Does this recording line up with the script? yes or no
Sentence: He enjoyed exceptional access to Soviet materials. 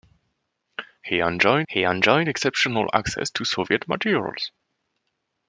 no